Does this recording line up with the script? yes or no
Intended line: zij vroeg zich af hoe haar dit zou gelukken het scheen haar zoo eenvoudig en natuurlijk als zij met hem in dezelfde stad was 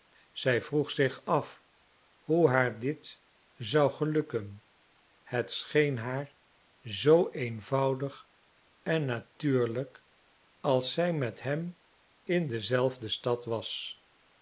yes